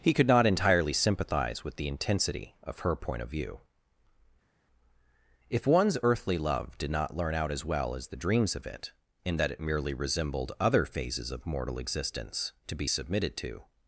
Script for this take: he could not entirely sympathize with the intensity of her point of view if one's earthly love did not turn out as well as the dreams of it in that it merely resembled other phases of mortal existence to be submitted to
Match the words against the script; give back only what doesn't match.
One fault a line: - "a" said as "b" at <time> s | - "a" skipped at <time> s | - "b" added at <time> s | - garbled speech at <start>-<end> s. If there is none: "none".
- "turn" said as "learn" at 7.2 s